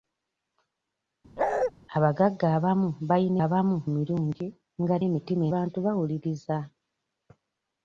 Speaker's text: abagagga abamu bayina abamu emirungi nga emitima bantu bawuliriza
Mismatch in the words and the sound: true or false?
true